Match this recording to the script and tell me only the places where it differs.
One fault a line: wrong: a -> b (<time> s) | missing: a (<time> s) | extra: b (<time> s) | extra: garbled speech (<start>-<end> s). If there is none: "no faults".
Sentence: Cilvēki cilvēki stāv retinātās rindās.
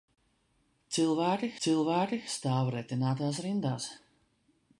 no faults